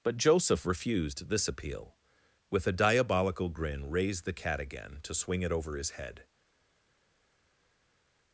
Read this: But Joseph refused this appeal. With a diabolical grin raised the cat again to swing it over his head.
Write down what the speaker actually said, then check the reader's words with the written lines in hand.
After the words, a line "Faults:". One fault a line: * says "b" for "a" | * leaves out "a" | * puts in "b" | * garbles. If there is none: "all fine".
But Joseph refused this appeal. With a diabolical grin raised the cat again to swing it over his head.
Faults:
all fine